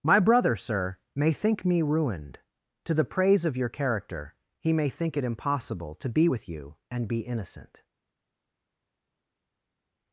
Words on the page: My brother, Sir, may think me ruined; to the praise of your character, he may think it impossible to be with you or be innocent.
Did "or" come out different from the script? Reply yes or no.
yes